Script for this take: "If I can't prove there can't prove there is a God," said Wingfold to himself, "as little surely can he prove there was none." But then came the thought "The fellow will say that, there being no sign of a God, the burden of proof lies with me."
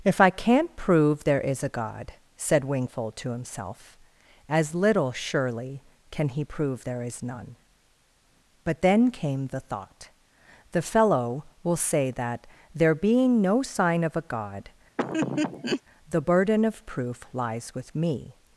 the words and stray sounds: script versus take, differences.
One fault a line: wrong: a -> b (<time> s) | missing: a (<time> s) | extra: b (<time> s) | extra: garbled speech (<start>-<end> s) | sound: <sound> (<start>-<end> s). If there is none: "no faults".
missing: can't prove there (1.4 s)
wrong: was -> is (7.0 s)
sound: laugh (15.0-15.8 s)